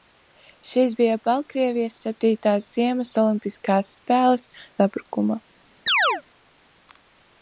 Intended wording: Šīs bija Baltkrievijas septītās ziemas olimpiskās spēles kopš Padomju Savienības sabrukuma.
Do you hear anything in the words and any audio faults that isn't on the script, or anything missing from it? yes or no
yes